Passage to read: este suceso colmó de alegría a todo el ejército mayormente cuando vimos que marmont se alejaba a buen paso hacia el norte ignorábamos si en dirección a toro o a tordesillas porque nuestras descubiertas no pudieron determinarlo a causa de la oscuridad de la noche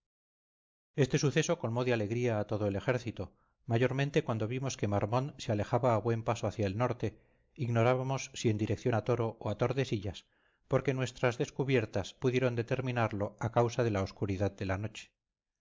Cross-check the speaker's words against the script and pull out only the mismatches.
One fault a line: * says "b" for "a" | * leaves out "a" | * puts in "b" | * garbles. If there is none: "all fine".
* leaves out "no"